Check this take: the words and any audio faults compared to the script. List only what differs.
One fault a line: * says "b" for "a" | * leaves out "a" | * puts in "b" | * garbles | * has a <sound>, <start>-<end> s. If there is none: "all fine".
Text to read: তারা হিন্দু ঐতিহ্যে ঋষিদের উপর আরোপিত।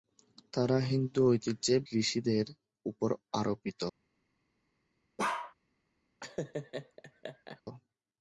* has a bark, 5.2-5.5 s
* has a laugh, 6.2-7.6 s